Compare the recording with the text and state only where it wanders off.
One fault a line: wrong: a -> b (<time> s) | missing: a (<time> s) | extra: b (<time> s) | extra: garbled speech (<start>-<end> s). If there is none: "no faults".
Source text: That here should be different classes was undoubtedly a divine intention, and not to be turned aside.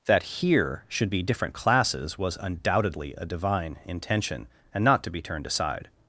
no faults